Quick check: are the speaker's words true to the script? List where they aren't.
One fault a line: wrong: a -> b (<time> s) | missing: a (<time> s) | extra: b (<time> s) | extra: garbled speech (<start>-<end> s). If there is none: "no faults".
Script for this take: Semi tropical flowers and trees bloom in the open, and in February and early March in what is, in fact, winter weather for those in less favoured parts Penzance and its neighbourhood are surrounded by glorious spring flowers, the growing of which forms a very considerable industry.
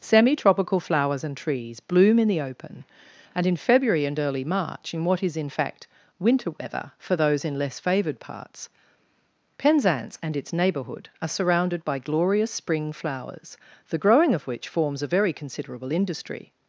no faults